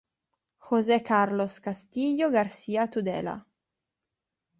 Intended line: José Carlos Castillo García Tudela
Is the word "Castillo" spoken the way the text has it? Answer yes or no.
yes